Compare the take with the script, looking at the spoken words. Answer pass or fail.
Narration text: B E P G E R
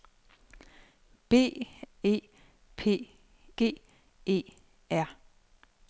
pass